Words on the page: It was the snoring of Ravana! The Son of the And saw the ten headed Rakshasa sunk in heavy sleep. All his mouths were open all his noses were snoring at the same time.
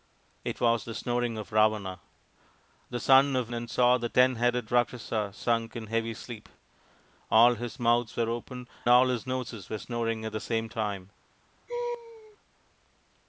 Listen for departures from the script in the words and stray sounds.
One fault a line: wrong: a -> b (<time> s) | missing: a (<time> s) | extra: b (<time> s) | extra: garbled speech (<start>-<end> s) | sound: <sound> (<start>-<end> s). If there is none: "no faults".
sound: laugh (11.7-12.4 s)